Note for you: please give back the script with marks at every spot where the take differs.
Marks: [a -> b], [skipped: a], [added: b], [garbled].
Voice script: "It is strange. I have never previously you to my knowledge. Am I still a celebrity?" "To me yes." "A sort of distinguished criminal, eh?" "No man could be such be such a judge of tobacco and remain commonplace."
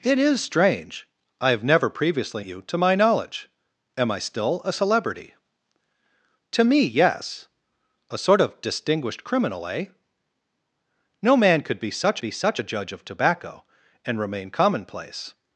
"It is strange. I have never previously you to my knowledge. Am I still a celebrity?" "To me yes." "A sort of distinguished criminal, eh?" "No man could be such be such a judge of tobacco and remain commonplace."